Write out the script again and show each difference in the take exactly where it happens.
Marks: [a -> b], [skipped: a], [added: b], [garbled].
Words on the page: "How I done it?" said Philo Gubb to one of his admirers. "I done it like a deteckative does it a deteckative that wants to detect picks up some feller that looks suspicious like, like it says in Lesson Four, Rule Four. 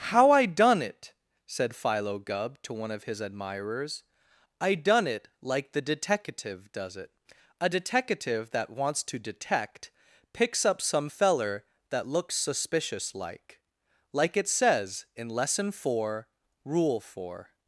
"How I done it?" said Philo Gubb to one of his admirers. "I done it like [a -> the] deteckative does it a deteckative that wants to detect picks up some feller that looks suspicious like, like it says in Lesson Four, Rule Four.